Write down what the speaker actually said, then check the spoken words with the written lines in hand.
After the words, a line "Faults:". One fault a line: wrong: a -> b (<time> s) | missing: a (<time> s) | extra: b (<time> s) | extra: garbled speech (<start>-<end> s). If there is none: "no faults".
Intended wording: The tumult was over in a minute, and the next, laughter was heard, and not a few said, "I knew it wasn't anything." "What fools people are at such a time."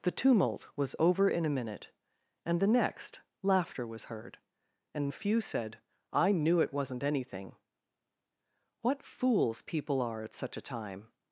The tumult was over in a minute, and the next, laughter was heard, and a few said, "I knew it wasn't anything." "What fools people are at such a time."
Faults:
missing: not (5.1 s)